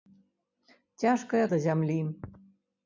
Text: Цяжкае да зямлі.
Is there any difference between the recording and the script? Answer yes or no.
no